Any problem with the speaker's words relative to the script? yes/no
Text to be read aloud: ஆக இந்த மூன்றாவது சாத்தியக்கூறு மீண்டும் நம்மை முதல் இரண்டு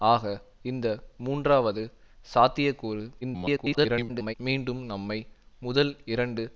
yes